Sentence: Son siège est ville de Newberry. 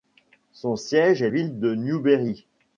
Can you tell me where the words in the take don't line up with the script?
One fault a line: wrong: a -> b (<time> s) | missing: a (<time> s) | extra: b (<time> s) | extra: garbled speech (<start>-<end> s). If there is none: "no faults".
no faults